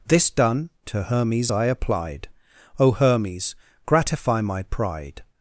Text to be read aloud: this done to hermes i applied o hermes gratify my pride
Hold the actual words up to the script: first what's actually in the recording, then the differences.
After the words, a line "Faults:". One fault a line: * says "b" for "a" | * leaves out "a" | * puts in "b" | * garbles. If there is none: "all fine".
this done to hermes i applied o hermes gratify my pride
Faults:
all fine